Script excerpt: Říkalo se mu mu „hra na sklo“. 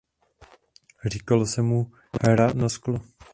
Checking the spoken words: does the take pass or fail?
fail